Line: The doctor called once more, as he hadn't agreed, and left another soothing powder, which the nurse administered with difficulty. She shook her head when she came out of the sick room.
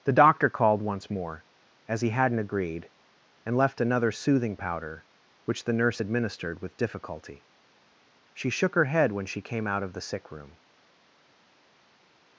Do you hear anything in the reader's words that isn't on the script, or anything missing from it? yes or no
no